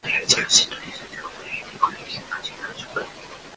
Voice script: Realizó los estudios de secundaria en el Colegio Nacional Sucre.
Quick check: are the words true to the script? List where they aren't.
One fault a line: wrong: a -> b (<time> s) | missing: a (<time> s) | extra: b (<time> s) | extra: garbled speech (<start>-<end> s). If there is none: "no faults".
no faults